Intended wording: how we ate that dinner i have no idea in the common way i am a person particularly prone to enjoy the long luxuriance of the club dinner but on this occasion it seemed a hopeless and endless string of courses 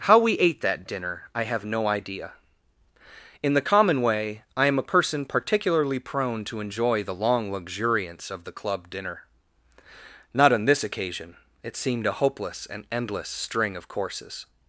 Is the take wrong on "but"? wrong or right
wrong